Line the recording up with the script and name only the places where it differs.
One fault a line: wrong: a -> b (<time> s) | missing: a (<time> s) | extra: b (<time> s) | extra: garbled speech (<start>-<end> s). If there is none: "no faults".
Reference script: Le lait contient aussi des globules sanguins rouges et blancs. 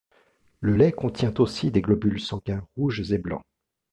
no faults